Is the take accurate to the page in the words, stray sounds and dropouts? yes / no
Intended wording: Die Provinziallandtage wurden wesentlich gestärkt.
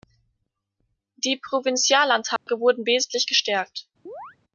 no